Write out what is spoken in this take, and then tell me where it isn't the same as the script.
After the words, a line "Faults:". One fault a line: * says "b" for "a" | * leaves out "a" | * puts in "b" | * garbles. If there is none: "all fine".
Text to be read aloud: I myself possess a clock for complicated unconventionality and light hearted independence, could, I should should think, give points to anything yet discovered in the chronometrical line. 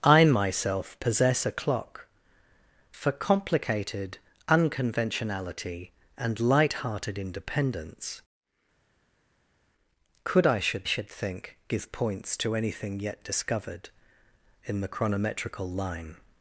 I myself possess a clock for complicated unconventionality and light hearted independence, could, I should should think, give points to anything yet discovered in the chronometrical line.
Faults:
all fine